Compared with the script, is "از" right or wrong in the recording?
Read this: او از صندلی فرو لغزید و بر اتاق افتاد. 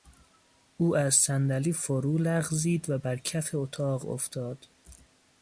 right